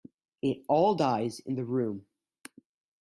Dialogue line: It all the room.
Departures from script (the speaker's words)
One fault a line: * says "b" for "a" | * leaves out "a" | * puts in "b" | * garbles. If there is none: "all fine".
* puts in "dies in"